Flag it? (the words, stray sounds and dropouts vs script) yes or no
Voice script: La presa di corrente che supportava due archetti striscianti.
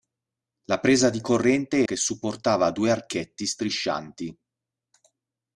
no